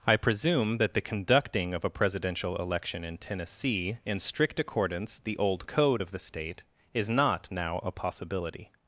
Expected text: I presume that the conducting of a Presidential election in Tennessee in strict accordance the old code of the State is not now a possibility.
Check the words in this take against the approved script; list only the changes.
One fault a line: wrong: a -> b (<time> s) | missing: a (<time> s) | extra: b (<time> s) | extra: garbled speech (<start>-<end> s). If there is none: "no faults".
no faults